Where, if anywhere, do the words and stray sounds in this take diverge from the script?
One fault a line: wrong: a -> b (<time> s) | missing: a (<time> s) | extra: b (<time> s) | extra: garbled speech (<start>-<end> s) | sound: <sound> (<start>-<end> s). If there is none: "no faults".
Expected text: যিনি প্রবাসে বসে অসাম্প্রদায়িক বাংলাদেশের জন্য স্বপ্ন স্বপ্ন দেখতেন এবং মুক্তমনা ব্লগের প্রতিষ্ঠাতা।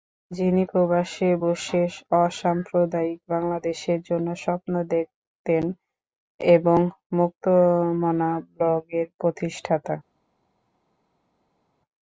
missing: স্বপ্ন (4.7 s)